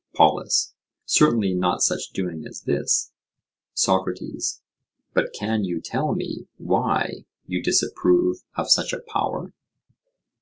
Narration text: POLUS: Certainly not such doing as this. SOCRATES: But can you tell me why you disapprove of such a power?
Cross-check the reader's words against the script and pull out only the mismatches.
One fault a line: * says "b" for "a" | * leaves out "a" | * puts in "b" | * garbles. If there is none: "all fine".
all fine